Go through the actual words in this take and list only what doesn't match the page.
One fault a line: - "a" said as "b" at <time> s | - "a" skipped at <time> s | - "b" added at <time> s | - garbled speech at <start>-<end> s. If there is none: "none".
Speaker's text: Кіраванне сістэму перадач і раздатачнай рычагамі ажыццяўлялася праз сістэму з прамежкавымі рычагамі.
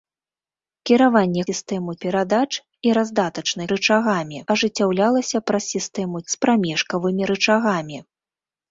none